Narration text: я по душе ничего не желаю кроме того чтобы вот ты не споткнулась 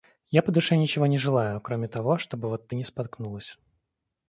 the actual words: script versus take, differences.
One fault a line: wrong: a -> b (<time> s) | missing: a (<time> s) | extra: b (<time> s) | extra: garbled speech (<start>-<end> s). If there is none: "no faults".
no faults